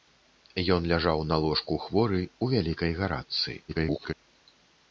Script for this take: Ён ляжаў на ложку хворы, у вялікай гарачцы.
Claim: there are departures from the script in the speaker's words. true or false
true